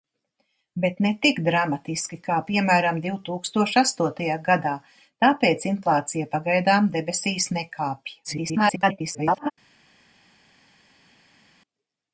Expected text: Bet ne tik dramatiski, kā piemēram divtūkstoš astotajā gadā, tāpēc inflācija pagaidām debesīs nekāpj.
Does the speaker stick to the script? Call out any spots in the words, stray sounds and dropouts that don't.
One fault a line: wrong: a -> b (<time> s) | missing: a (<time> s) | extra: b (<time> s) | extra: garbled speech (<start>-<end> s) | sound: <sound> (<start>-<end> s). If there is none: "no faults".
extra: garbled speech (8.2-9.5 s)